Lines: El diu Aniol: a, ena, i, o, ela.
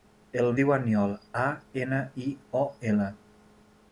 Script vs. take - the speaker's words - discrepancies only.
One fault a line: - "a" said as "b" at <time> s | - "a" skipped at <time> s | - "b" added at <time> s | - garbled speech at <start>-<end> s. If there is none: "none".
none